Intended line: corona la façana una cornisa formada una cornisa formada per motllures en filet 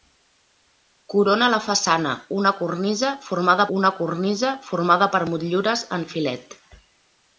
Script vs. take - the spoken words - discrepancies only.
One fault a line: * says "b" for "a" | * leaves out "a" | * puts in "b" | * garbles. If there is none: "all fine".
all fine